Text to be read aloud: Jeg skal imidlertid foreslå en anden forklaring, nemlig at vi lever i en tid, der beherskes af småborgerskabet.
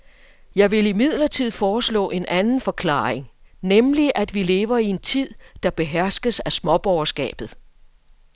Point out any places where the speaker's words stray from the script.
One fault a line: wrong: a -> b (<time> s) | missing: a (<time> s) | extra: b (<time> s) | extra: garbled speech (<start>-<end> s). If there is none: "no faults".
wrong: skal -> vil (0.7 s)